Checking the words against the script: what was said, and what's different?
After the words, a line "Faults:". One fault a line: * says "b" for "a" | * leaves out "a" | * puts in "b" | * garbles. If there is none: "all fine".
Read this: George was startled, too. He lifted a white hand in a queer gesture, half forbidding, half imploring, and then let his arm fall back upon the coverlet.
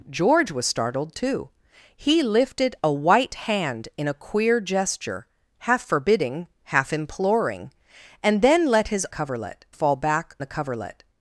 George was startled, too. He lifted a white hand in a queer gesture, half forbidding, half imploring, and then let his coverlet fall back the coverlet.
Faults:
* says "coverlet" for "arm"
* leaves out "upon"